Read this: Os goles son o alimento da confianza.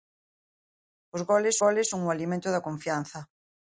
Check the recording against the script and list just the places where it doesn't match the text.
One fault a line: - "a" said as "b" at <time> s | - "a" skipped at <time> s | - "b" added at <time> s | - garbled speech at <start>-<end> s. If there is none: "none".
- "goles" added at 1.6 s